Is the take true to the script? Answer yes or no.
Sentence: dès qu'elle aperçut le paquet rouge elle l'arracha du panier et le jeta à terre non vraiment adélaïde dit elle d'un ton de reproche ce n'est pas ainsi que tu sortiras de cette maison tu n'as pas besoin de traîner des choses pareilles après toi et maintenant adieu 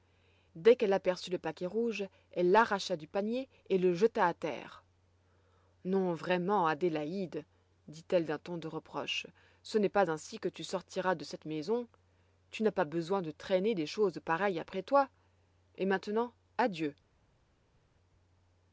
yes